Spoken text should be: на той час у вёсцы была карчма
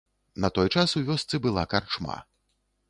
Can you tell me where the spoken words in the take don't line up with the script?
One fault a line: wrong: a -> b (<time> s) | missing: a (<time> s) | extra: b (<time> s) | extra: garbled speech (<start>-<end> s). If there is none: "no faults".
no faults